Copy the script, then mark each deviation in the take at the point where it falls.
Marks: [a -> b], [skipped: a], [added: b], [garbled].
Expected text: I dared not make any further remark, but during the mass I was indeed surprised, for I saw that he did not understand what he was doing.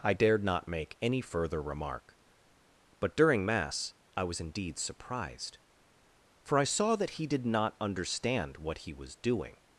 I dared not make any further remark, but during [skipped: the] mass I was indeed surprised, for I saw that he did not understand what he was doing.